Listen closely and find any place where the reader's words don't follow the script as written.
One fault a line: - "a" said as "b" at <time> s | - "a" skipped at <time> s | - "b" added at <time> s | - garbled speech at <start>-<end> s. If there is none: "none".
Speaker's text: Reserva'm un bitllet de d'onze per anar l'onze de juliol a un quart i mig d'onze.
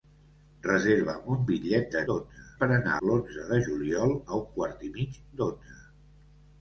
none